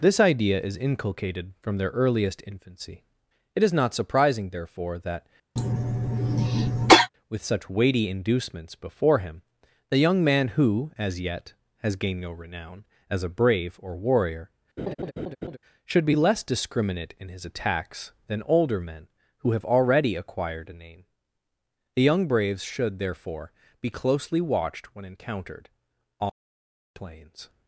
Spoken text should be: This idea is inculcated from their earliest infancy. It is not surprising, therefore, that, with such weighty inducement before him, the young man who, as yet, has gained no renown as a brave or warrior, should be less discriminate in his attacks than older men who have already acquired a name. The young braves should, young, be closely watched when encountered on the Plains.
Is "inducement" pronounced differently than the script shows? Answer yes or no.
yes